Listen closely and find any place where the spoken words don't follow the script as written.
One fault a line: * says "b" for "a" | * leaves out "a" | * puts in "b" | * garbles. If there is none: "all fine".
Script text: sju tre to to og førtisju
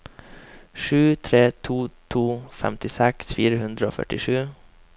* puts in "femtiseks fire hundre"